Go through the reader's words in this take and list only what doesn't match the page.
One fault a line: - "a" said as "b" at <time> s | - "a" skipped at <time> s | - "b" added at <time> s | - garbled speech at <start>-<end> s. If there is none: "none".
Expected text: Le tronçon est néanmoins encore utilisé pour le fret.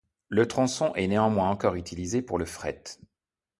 none